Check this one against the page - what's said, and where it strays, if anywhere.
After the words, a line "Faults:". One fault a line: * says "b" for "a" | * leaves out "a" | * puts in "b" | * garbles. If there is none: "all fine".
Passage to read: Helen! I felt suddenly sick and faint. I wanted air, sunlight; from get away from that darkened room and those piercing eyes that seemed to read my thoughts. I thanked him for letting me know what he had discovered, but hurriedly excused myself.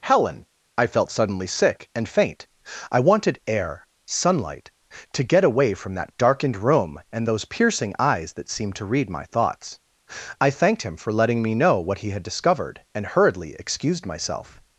Helen! I felt suddenly sick and faint. I wanted air, sunlight; to get away from that darkened room and those piercing eyes that seemed to read my thoughts. I thanked him for letting me know what he had discovered, and hurriedly excused myself.
Faults:
* says "to" for "from"
* says "and" for "but"